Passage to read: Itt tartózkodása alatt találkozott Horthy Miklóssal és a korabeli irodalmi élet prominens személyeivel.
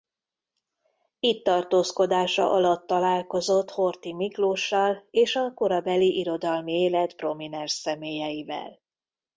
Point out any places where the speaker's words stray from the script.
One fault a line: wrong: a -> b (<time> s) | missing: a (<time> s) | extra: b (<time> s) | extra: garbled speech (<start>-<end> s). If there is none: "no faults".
no faults